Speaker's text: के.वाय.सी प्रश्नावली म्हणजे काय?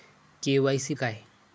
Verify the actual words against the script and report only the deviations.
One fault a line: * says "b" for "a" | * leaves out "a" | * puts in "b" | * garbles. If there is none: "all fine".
* leaves out "प्रश्नावली म्हणजे"